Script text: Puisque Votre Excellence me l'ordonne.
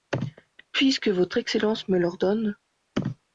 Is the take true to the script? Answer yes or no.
yes